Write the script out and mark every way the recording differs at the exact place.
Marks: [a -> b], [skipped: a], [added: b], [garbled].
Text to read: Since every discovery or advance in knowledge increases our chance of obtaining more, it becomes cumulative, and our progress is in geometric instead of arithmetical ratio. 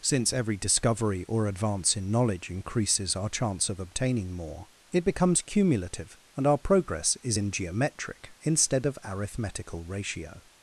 Since every discovery or advance in knowledge increases our chance of obtaining more, it becomes cumulative, and our progress is in geometric instead of arithmetical ratio.